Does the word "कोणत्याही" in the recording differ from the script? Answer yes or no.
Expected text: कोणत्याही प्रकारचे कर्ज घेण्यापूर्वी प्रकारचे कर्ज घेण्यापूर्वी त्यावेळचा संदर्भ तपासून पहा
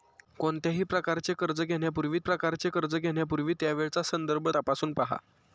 no